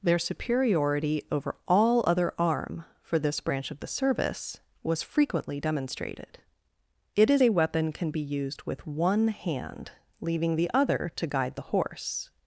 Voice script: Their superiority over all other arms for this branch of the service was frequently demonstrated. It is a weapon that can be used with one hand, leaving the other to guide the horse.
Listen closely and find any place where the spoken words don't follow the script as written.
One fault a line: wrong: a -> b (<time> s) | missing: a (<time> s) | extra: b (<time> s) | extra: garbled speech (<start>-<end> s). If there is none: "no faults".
wrong: arms -> arm (2.4 s)
missing: that (7.9 s)